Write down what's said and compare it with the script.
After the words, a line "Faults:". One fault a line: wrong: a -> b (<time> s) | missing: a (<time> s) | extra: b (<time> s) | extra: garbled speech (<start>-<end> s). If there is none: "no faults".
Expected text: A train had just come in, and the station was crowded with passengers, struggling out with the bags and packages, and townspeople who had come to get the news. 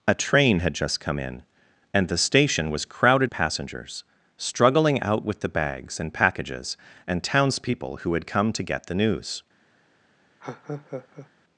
A train had just come in, and the station was crowded passengers, struggling out with the bags and packages, and townspeople who had come to get the news.
Faults:
missing: with (3.3 s)